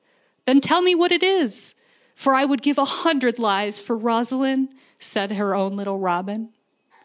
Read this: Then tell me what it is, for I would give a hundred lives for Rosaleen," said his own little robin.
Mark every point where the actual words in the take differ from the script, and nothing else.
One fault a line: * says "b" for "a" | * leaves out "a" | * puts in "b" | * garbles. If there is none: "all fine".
* says "her" for "his"